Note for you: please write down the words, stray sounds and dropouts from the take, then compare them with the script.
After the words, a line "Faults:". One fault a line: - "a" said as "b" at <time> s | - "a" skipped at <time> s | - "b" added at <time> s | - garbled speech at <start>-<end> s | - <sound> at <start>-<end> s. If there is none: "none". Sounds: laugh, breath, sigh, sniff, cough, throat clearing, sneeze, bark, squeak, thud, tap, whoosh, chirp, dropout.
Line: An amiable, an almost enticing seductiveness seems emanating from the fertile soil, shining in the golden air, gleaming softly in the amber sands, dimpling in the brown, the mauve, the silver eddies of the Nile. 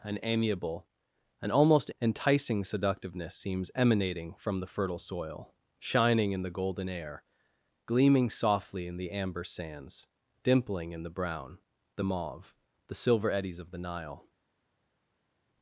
An amiable, an almost enticing seductiveness seems emanating from the fertile soil, shining in the golden air, gleaming softly in the amber sands, dimpling in the brown, the mauve, the silver eddies of the Nile.
Faults:
none